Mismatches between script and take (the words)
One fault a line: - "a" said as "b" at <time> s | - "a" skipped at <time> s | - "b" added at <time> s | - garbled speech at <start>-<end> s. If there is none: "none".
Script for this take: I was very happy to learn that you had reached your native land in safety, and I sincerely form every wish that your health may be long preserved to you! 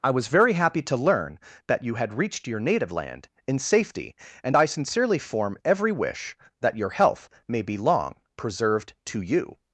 none